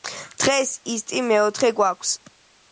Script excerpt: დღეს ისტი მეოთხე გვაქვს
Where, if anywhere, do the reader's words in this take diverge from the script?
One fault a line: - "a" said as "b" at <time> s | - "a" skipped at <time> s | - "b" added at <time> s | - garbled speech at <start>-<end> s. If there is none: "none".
none